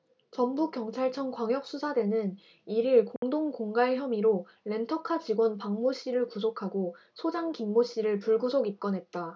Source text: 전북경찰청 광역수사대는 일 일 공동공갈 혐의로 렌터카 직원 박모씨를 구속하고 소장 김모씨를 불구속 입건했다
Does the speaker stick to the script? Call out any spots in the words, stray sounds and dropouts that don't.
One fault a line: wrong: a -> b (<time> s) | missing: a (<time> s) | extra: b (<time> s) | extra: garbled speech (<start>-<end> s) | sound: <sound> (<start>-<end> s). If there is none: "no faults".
sound: dropout (3.2-3.2 s)